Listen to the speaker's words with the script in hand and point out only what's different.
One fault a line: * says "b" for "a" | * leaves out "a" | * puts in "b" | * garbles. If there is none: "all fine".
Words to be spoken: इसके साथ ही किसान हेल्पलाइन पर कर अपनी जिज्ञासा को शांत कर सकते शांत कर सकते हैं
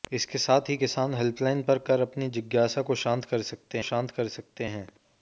all fine